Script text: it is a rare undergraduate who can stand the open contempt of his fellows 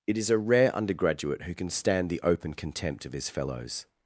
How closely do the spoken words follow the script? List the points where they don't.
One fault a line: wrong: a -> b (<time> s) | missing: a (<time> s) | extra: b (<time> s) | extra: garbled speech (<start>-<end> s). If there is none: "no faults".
no faults